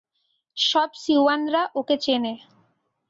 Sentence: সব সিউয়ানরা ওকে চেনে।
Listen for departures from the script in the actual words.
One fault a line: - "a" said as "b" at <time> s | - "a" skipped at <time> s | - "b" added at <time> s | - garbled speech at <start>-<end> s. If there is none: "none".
none